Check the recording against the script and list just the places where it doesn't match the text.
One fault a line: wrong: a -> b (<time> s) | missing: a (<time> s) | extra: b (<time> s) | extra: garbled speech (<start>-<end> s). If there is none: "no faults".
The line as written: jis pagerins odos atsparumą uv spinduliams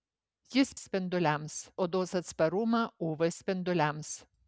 wrong: pagerins -> spinduliams (0.8 s)